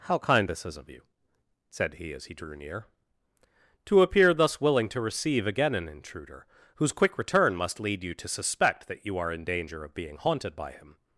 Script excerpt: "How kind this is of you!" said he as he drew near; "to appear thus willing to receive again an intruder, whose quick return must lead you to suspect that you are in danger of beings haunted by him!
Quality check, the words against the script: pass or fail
fail